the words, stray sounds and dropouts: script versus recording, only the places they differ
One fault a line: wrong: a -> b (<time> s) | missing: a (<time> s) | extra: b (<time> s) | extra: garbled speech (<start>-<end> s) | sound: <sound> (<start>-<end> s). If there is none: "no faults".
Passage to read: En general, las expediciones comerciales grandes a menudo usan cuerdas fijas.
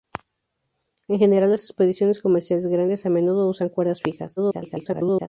extra: garbled speech (4.4-5.3 s)